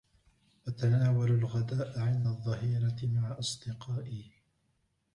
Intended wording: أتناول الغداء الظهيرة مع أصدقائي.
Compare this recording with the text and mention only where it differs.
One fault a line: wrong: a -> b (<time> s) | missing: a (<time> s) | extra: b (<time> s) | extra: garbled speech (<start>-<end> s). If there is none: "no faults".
extra: عند (2.0 s)